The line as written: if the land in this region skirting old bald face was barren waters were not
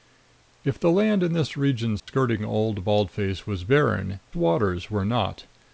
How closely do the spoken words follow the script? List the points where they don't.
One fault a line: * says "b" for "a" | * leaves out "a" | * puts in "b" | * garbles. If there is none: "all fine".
all fine